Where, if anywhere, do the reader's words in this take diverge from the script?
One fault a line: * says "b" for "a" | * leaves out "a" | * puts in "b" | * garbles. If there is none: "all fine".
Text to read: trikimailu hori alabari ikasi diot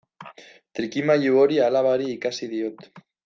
all fine